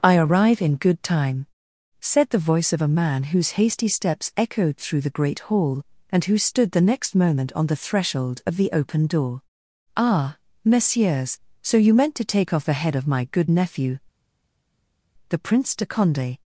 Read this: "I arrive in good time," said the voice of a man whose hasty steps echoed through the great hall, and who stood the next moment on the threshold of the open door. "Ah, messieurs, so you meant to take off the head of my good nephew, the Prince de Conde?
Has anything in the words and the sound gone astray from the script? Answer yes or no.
no